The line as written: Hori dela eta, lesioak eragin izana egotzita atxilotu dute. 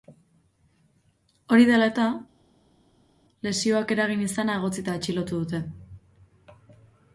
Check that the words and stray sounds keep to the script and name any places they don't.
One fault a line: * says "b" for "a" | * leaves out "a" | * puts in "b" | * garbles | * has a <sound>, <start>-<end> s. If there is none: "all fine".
all fine